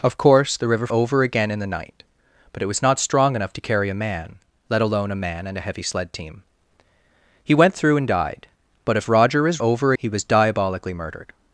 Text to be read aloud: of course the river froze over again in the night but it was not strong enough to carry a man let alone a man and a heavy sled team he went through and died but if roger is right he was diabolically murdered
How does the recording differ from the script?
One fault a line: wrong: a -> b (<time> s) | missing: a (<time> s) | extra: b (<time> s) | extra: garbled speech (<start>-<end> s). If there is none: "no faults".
missing: froze (0.9 s)
wrong: right -> over (9.6 s)